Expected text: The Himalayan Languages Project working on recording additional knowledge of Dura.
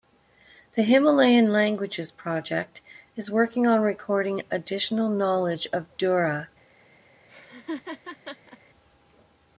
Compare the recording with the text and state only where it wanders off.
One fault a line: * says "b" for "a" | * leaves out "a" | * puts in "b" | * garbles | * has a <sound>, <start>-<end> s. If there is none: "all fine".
* puts in "is"
* has a laugh, 7.3-8.6 s